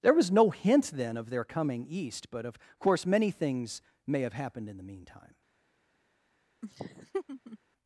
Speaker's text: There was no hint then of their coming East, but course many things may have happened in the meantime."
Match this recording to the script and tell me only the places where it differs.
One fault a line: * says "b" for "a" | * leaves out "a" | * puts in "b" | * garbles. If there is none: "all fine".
* puts in "of"